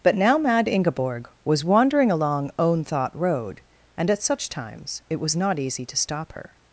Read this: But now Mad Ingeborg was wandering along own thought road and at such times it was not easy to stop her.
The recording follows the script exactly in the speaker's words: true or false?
true